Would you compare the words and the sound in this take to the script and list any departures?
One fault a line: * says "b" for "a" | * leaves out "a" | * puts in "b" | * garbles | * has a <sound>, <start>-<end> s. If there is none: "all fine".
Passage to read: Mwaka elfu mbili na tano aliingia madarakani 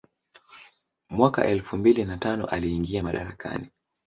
all fine